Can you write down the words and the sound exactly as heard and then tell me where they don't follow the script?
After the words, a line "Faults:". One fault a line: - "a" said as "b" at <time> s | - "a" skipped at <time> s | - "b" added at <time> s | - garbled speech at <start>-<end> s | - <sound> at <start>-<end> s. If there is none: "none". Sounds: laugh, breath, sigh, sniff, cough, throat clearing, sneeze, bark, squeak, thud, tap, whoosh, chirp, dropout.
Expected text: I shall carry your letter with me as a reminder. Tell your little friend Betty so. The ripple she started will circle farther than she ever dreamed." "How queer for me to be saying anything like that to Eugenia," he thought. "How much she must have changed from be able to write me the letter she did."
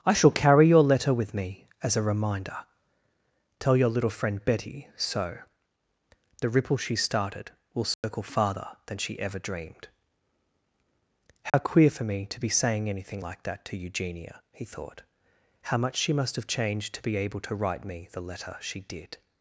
I shall carry your letter with me as a reminder. Tell your little friend Betty so. The ripple she started will circle farther than she ever dreamed." "How queer for me to be saying anything like that to Eugenia," he thought. "How much she must have changed to be able to write me the letter she did."
Faults:
- dropout at 7.9-8.0 s
- dropout at 11.5-11.5 s
- "from" said as "to" at 16.9 s